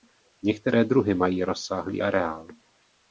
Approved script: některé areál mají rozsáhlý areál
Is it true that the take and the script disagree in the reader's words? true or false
true